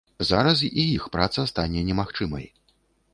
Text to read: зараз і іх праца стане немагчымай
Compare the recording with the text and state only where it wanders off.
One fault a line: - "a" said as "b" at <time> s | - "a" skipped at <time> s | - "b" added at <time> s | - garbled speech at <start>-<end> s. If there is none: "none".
none